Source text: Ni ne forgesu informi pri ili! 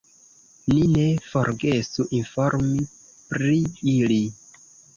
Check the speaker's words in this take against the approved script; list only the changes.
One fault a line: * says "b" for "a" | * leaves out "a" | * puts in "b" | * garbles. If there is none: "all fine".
all fine